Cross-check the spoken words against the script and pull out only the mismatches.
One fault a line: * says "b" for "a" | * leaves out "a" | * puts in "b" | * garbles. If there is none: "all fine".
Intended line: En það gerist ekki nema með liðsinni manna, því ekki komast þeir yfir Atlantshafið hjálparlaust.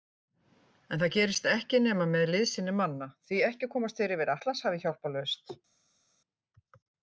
all fine